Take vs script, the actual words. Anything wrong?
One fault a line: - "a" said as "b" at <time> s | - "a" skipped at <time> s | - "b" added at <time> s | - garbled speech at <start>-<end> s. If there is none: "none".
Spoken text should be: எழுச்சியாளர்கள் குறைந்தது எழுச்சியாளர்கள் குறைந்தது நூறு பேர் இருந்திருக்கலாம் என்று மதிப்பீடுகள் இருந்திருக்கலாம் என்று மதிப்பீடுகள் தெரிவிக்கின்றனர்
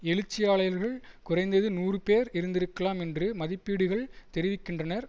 - "எழுச்சியாளர்கள் குறைந்தது" skipped at 1.7 s
- "இருந்திருக்கலாம் என்று மதிப்பீடுகள்" skipped at 4.0 s